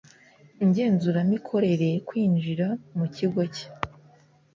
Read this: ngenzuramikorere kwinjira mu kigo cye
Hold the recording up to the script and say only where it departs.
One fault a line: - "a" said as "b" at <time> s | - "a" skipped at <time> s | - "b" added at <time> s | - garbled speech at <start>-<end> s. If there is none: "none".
none